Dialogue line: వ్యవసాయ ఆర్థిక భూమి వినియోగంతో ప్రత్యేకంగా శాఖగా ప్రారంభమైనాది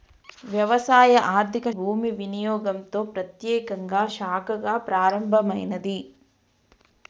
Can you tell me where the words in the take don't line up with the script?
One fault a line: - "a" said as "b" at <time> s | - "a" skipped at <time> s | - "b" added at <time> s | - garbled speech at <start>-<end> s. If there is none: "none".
none